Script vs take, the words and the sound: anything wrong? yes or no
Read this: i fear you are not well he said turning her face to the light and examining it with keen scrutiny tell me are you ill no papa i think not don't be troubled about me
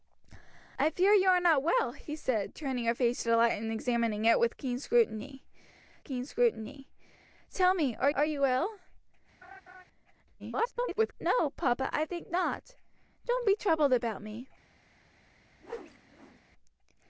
yes